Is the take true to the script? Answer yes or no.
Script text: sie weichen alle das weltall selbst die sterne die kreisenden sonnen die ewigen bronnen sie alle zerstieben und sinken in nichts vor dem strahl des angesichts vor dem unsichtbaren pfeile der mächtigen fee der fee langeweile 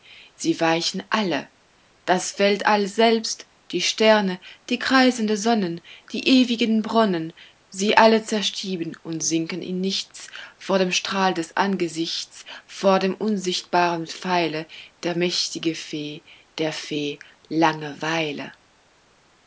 yes